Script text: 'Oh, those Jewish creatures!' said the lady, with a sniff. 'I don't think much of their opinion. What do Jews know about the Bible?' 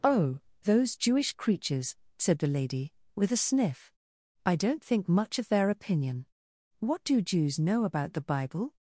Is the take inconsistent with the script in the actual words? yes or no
no